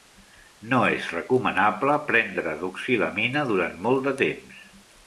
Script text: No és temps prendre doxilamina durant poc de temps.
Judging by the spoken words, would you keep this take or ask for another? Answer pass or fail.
fail